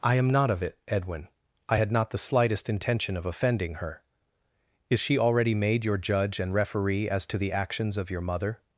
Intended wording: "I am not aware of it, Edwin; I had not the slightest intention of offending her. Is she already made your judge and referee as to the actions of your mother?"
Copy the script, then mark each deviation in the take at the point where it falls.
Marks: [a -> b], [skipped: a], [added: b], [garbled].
"I am not [skipped: aware] of it, Edwin; I had not the slightest intention of offending her. Is she already made your judge and referee as to the actions of your mother?"